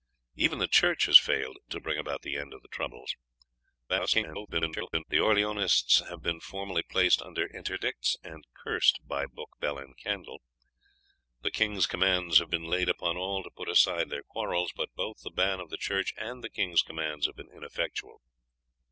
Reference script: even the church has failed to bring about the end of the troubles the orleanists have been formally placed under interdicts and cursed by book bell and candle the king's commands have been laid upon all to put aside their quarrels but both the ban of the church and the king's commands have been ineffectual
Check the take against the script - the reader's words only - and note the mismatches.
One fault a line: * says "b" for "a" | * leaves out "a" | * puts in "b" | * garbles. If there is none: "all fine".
* garbles